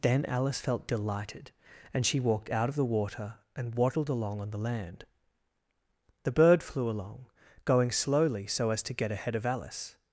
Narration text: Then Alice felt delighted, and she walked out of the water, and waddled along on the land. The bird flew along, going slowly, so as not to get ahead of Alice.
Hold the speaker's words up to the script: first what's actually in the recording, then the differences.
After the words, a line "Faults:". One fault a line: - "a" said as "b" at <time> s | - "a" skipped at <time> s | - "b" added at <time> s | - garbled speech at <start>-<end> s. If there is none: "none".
Then Alice felt delighted, and she walked out of the water, and waddled along on the land. The bird flew along, going slowly, so as to get ahead of Alice.
Faults:
- "not" skipped at 8.8 s